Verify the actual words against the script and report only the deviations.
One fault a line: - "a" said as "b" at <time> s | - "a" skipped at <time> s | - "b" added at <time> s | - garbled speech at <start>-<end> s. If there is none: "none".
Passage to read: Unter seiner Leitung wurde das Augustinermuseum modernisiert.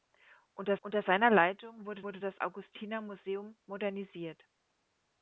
- "unter" added at 0.8 s
- "wurde" added at 2.0 s